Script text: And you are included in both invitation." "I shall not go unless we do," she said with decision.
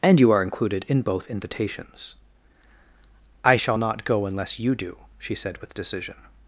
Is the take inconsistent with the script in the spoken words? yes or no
yes